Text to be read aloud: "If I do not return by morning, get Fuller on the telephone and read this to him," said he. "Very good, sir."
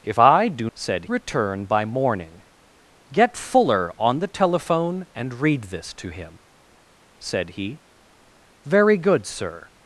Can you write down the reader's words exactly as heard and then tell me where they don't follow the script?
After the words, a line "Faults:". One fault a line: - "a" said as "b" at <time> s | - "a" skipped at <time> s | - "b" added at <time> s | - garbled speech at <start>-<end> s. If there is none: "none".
"If I do said return by morning, get Fuller on the telephone and read this to him," said he. "Very good, sir."
Faults:
- "not" said as "said" at 0.7 s